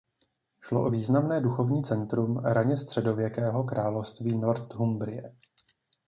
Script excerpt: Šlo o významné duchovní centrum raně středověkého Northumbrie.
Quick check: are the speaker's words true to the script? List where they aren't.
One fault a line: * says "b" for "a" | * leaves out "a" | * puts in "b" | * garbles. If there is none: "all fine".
* puts in "království"